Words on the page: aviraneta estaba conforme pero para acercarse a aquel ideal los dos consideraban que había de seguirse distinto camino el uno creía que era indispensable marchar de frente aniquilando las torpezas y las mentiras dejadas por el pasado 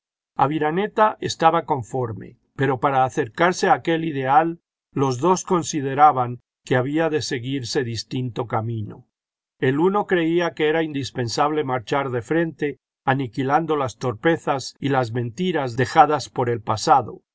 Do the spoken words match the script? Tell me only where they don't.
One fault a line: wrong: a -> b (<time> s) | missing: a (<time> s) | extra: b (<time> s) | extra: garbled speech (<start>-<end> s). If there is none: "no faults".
no faults